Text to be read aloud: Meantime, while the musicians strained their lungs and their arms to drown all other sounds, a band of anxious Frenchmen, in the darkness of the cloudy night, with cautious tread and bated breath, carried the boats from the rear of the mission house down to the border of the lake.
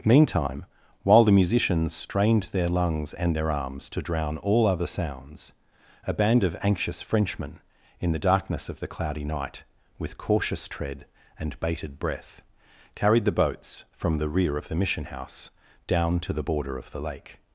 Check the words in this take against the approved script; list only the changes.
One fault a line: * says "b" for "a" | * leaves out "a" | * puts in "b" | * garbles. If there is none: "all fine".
all fine